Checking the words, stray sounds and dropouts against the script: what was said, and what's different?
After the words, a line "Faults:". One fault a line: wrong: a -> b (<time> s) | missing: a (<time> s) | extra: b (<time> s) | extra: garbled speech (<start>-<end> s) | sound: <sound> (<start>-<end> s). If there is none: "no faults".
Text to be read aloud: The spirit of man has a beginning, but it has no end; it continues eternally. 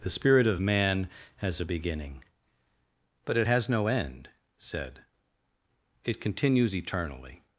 The spirit of man has a beginning, but it has no end; said it continues eternally.
Faults:
extra: said (4.6 s)